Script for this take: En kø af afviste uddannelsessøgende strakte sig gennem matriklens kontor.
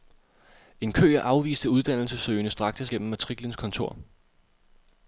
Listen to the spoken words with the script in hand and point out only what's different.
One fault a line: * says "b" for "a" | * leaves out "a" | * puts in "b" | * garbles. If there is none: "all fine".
* leaves out "sig"